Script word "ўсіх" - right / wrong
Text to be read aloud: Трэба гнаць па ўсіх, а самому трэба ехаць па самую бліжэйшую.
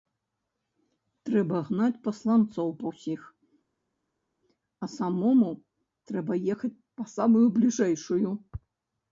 right